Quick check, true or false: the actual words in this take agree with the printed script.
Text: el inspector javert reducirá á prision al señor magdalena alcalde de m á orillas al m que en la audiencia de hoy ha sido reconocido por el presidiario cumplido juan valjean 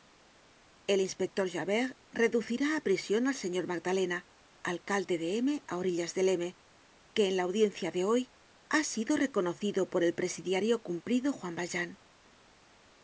false